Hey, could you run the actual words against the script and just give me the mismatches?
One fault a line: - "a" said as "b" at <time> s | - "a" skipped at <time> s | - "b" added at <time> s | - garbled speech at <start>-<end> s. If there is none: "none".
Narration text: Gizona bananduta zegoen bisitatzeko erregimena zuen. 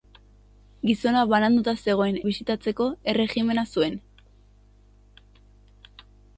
none